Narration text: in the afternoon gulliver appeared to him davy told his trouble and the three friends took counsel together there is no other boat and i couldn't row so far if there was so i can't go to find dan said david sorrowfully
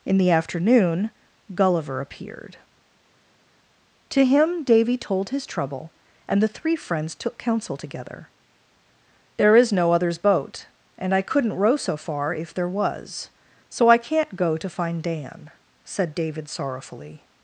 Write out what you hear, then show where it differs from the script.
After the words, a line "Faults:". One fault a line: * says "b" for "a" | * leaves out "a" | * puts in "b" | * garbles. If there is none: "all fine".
in the afternoon gulliver appeared to him davy told his trouble and the three friends took counsel together there is no others boat and i couldn't row so far if there was so i can't go to find dan said david sorrowfully
Faults:
* says "others" for "other"